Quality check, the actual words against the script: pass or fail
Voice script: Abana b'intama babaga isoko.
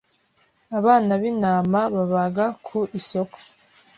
fail